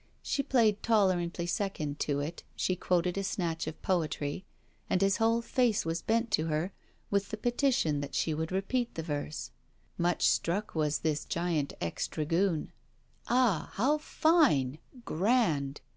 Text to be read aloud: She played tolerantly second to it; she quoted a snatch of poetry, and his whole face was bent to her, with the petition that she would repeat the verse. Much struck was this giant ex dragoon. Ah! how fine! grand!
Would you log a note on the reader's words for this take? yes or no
no